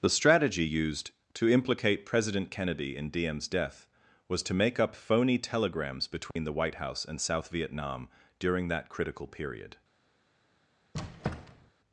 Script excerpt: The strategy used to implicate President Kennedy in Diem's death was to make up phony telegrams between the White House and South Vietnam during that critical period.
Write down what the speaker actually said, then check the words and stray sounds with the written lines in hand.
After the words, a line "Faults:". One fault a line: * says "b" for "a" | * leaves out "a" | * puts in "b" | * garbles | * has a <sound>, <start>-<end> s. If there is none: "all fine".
The strategy used to implicate President Kennedy in Diem's death was to make up phony telegrams between the White House and South Vietnam during that critical period.
Faults:
* has a dropout, 6.3-6.4 s
* has a squeak, 10.9-11.7 s